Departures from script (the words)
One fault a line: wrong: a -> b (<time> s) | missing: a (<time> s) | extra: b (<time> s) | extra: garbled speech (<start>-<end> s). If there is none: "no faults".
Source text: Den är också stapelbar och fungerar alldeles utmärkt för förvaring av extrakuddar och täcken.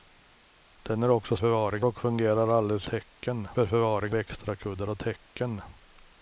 wrong: stapelbar -> förvaring (1.4 s)
wrong: utmärkt -> täcken (2.9 s)
missing: av (4.2 s)